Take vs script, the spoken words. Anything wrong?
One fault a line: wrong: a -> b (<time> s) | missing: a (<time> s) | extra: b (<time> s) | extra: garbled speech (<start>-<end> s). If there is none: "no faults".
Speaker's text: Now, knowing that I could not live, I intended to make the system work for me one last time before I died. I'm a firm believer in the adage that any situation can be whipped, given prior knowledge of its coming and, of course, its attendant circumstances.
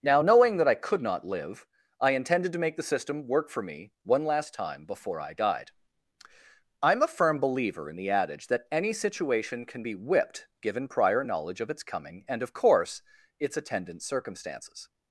no faults